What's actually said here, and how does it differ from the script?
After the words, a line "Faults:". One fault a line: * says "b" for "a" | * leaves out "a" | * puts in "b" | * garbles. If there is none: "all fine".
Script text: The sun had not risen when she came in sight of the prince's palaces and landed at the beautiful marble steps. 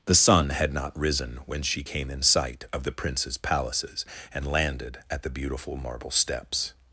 The sun had not risen when she came in sight of the prince's palaces and landed at the beautiful marble steps.
Faults:
all fine